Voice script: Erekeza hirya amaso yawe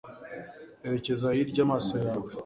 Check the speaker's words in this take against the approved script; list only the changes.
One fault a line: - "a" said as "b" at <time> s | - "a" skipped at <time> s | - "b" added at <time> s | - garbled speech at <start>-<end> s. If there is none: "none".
none